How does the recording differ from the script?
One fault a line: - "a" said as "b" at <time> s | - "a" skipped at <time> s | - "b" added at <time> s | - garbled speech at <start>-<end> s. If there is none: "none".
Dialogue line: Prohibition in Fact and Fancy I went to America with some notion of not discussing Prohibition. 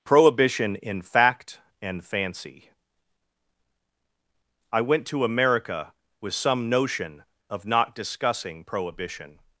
none